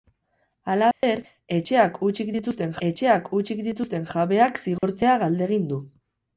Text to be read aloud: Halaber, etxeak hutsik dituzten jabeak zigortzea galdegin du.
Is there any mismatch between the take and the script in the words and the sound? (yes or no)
yes